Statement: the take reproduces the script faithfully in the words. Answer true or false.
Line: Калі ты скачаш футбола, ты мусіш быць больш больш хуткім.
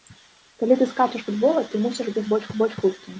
true